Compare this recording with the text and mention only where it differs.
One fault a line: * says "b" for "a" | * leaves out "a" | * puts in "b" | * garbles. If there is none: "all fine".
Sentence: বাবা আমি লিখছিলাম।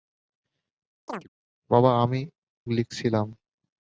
all fine